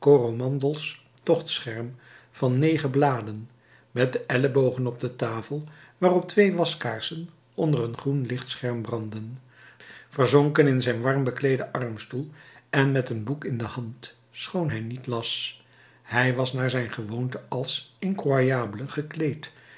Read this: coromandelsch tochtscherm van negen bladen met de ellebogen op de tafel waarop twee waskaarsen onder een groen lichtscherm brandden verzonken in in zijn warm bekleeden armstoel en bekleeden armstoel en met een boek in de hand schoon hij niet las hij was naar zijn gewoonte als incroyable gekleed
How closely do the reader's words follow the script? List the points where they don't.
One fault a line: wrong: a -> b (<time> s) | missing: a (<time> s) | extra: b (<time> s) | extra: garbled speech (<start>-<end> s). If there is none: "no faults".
missing: in (10.8 s)
missing: bekleeden armstoel en (12.9 s)